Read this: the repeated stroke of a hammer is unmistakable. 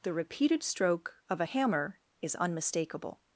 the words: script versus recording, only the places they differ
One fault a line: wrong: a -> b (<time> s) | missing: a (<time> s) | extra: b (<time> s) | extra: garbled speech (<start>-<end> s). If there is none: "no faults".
no faults